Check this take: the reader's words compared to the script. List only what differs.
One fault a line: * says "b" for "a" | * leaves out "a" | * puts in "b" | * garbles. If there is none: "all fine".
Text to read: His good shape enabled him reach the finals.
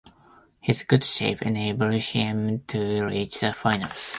* puts in "to"